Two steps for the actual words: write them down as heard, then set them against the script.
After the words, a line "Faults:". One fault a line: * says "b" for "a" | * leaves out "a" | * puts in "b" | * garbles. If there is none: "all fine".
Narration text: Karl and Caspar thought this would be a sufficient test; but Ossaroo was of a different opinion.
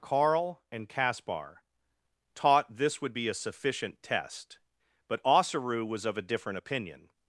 Karl and Caspar taught this would be a sufficient test; but Ossaroo was of a different opinion.
Faults:
* says "taught" for "thought"